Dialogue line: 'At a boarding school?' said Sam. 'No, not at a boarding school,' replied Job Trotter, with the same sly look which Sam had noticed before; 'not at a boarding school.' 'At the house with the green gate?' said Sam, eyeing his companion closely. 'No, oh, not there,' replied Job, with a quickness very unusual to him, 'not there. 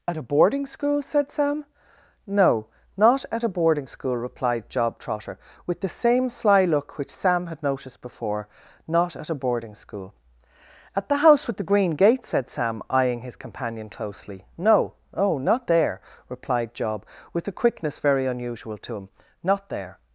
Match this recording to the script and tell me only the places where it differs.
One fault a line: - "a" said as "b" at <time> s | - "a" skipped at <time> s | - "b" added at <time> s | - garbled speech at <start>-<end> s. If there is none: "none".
none